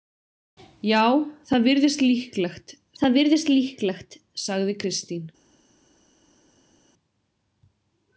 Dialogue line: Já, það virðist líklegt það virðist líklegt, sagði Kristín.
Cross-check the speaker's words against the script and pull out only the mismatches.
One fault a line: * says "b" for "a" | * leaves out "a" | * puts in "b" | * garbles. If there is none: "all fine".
all fine